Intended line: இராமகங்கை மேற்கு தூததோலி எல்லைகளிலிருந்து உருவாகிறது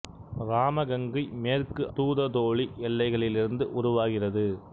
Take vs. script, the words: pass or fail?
pass